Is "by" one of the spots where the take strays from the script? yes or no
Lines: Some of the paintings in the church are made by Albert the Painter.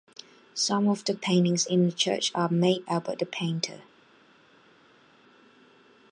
yes